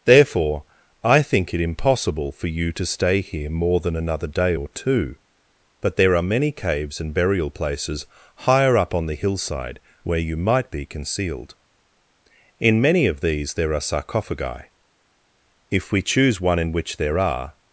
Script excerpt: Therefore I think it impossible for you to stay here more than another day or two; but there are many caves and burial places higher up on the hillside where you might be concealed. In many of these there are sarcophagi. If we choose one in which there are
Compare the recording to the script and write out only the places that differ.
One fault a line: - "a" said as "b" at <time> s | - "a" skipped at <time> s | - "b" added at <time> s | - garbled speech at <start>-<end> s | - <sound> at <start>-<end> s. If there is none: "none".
none